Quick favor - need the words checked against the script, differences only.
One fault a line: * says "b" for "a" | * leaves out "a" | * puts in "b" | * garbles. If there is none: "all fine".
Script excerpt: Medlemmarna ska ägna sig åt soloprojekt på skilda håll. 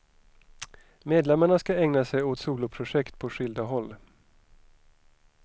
all fine